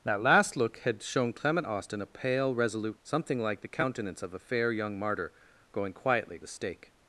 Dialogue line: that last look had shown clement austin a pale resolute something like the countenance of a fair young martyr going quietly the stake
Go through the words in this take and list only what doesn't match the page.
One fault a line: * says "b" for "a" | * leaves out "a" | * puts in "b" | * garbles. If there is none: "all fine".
all fine